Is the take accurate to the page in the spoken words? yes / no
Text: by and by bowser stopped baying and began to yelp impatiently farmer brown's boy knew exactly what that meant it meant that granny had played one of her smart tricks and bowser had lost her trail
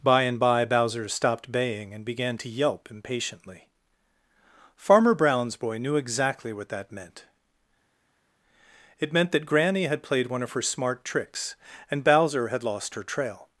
yes